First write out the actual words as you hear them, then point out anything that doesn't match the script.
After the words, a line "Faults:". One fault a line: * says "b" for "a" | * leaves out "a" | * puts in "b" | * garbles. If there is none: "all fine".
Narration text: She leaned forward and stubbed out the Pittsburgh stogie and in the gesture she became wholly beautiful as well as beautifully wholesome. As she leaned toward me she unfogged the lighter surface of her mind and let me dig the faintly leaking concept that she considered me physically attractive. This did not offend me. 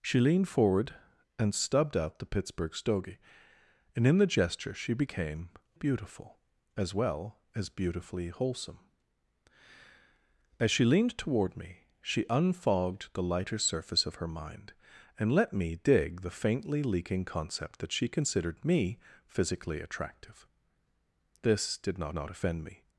She leaned forward and stubbed out the Pittsburgh stogie and in the gesture she became beautiful as well as beautifully wholesome. As she leaned toward me she unfogged the lighter surface of her mind and let me dig the faintly leaking concept that she considered me physically attractive. This did not not offend me.
Faults:
* leaves out "wholly"
* puts in "not"